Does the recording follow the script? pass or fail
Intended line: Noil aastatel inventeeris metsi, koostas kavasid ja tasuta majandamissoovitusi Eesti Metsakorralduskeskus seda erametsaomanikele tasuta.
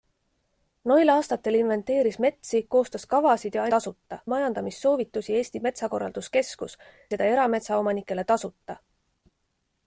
pass